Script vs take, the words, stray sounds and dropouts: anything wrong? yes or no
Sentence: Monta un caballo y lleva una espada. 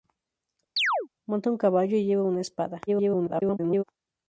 yes